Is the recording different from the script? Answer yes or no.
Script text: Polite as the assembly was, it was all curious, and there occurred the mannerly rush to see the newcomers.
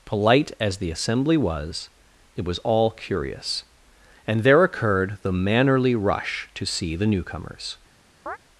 no